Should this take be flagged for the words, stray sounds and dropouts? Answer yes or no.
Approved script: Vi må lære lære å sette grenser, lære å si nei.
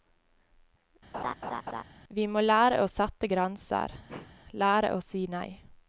yes